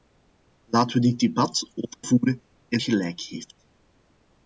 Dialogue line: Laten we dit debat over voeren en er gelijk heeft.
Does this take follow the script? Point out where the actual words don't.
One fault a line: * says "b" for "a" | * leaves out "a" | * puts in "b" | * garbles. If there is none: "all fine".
all fine